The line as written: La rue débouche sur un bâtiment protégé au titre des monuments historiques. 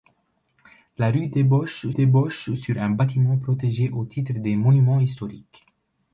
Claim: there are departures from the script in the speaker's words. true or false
true